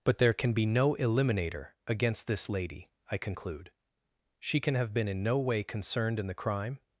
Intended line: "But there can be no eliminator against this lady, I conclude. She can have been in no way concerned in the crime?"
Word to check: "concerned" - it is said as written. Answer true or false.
true